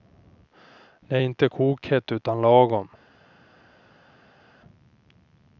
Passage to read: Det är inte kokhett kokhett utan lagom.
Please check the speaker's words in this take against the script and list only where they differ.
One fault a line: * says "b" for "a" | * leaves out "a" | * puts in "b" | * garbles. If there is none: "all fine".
* leaves out "kokhett"